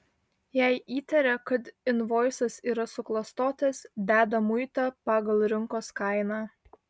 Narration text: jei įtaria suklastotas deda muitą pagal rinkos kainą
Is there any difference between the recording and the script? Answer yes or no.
yes